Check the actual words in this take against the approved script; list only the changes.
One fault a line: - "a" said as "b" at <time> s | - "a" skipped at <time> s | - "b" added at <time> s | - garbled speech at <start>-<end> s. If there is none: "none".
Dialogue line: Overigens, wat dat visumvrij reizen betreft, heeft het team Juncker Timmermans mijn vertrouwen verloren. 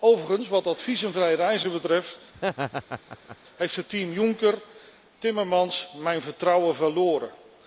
none